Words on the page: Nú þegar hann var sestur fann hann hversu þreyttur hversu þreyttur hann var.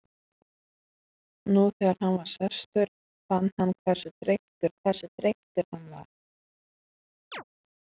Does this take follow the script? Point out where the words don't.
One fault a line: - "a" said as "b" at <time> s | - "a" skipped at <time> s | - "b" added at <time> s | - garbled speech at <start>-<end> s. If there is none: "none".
none